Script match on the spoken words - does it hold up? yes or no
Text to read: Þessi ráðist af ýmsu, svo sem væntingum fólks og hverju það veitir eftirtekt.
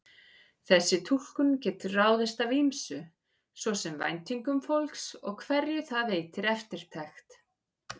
no